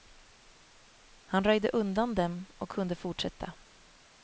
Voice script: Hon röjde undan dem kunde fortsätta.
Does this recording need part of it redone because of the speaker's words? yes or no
yes